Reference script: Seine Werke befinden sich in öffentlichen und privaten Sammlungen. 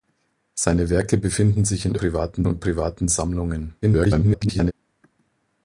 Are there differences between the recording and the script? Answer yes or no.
yes